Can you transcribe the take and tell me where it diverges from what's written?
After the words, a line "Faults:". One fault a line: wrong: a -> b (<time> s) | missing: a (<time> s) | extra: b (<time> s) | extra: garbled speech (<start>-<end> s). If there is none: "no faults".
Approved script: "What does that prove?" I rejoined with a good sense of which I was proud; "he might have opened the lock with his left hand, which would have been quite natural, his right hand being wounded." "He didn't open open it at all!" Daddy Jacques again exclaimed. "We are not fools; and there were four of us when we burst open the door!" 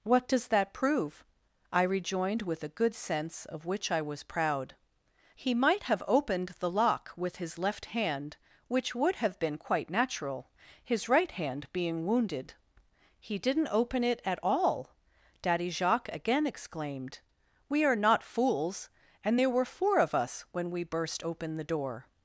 "What does that prove?" I rejoined with a good sense of which I was proud; "he might have opened the lock with his left hand, which would have been quite natural, his right hand being wounded." "He didn't open it at all!" Daddy Jacques again exclaimed. "We are not fools; and there were four of us when we burst open the door!"
Faults:
missing: open (14.0 s)